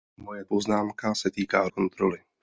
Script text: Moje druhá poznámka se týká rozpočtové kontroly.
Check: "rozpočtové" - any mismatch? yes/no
yes